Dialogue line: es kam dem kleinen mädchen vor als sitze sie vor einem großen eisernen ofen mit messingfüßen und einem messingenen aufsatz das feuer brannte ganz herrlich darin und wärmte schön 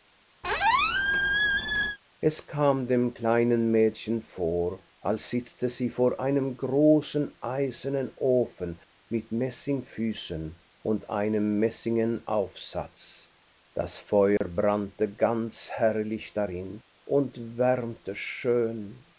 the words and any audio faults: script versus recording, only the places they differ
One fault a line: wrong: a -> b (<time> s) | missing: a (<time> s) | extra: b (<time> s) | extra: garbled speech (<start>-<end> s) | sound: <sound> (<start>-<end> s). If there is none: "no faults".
sound: squeak (0.4-2.0 s)
sound: dropout (14.4-14.4 s)